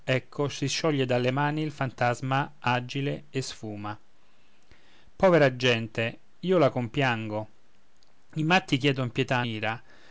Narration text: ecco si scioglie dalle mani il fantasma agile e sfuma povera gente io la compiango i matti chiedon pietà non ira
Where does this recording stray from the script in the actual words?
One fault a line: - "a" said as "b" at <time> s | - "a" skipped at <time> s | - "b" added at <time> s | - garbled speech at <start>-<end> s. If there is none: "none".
- "non" skipped at 9.4 s